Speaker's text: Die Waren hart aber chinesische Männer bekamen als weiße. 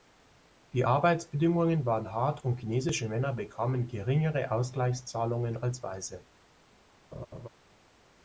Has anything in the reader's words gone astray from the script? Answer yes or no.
yes